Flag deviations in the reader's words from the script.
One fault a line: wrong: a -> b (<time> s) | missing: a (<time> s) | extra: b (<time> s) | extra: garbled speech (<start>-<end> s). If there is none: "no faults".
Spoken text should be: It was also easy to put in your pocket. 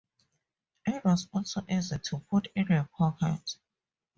no faults